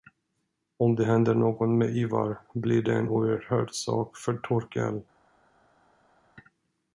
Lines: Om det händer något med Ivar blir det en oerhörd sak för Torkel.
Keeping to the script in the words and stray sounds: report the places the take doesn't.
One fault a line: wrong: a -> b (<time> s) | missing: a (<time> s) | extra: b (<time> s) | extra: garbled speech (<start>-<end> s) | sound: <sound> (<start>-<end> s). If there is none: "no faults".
no faults